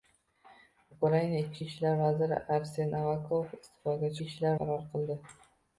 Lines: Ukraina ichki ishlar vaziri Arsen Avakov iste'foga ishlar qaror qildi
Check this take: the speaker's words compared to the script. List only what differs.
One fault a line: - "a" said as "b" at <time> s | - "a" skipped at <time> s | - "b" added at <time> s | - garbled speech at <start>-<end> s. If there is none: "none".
none